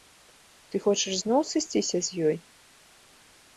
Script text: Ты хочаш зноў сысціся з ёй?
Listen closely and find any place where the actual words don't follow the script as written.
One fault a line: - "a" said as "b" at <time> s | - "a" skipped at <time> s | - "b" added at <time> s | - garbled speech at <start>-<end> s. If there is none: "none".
none